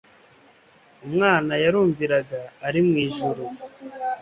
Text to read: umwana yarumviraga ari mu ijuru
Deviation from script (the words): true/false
false